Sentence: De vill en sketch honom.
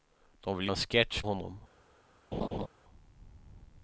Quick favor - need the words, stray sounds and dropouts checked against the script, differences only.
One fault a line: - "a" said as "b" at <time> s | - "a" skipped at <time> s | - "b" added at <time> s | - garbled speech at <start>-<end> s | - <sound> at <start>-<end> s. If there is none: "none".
- laugh at 2.3-2.7 s